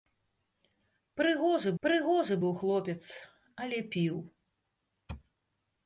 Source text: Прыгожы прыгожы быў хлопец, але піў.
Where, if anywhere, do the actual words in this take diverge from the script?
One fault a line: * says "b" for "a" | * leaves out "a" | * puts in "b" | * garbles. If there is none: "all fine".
all fine